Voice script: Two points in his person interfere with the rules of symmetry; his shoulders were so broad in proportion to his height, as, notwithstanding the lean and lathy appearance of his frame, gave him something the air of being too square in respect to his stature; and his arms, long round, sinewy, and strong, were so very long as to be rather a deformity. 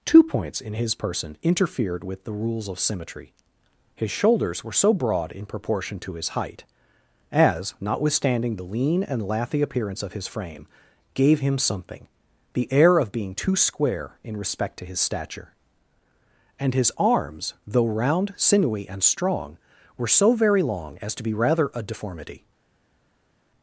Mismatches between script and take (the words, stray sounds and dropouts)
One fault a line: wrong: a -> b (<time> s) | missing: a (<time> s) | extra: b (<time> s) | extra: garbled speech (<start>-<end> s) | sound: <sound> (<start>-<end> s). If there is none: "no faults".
wrong: interfere -> interfered (1.4 s)
wrong: long -> though (17.7 s)